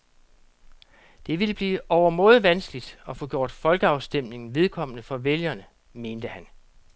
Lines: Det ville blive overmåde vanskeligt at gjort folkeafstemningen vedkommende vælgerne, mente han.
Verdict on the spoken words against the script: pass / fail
fail